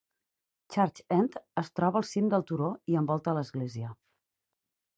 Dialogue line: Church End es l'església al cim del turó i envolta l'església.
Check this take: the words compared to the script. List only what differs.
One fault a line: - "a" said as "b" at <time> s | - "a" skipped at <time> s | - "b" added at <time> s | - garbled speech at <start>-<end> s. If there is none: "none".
- "l'església" said as "troba" at 1.8 s